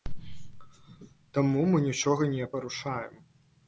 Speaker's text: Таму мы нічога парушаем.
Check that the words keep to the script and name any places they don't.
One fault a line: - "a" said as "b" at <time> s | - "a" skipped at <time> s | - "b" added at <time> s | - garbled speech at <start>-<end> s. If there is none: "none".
- "не" added at 2.4 s